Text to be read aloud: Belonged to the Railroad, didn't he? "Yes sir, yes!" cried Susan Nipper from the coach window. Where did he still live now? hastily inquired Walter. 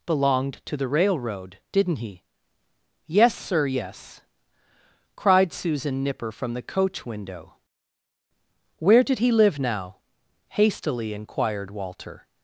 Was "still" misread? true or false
true